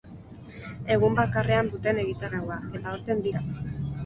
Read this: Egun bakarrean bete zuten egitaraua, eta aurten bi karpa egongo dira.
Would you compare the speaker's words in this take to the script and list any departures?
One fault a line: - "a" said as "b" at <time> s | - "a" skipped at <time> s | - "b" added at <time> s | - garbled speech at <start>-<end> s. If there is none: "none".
- "bete" skipped at 1.7 s
- "bi karpa egongo" skipped at 3.3 s